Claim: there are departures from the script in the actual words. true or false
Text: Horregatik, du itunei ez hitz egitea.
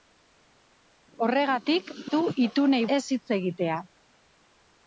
false